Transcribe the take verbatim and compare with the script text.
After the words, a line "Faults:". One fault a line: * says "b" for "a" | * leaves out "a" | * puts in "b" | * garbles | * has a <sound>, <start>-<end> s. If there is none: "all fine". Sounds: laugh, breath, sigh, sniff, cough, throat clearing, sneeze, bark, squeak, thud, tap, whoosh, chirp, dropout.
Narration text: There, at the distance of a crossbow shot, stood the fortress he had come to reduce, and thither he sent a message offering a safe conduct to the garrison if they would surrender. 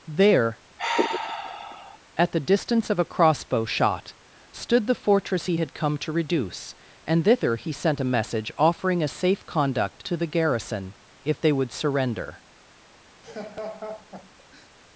There, at the distance of a crossbow shot, stood the fortress he had come to reduce, and thither he sent a message offering a safe conduct to the garrison if they would surrender.
Faults:
* has a sigh, 0.8-2.0 s
* has a laugh, 13.2-14.7 s